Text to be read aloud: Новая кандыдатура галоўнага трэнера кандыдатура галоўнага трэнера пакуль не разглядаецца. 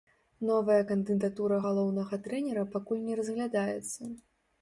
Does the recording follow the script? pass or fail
fail